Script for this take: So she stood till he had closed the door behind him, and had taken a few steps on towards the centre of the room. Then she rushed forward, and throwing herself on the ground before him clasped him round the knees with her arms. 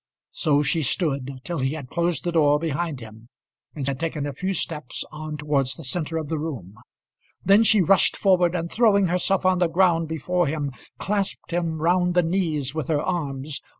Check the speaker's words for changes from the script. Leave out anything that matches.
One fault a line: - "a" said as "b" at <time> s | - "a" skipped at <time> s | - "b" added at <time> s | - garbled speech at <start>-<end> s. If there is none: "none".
none